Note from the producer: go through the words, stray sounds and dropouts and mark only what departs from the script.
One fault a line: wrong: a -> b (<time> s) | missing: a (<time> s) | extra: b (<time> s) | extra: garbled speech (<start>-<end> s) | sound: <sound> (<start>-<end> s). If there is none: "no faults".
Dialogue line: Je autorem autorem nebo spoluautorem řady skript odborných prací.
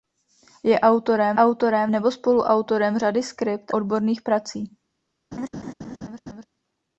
sound: laugh (5.3-6.5 s)